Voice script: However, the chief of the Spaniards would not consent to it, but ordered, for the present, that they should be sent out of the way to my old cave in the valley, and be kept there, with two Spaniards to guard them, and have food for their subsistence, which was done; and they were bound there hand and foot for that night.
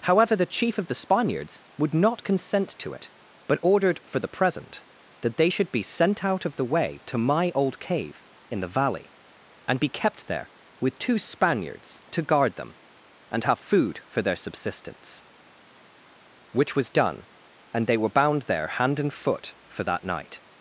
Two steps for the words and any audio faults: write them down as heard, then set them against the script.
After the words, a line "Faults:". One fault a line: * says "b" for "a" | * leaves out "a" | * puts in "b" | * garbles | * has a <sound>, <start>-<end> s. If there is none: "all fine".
However, the chief of the Spaniards would not consent to it, but ordered, for the present, that they should be sent out of the way to my old cave in the valley, and be kept there, with two Spaniards to guard them, and have food for their subsistence, which was done; and they were bound there hand and foot for that night.
Faults:
all fine